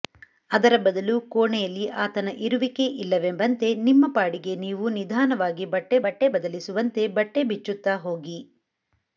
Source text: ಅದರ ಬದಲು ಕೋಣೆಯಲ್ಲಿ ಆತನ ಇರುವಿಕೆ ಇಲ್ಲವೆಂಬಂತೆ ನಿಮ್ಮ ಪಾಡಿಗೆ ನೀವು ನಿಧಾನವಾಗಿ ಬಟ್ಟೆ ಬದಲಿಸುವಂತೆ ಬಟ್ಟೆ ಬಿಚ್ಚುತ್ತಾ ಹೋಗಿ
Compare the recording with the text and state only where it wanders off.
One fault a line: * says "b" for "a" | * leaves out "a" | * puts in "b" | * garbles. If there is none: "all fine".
* puts in "ಬಟ್ಟೆ"